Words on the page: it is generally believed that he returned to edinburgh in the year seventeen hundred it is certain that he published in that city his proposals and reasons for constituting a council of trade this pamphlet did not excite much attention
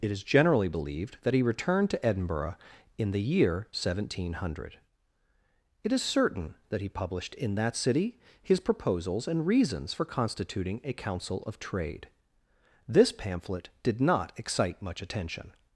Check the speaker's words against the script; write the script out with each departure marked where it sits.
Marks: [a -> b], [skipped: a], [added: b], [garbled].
it is generally believed that he returned to edinburgh in the year seventeen hundred it is certain that he published in that city his proposals and reasons for constituting a council of trade this pamphlet did not excite much attention